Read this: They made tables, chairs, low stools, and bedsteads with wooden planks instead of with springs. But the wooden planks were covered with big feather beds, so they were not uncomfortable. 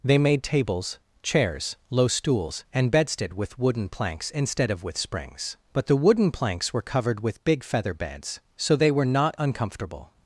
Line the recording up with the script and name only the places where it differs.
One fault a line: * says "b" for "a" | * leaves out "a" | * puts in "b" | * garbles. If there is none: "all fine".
* says "bedstead" for "bedsteads"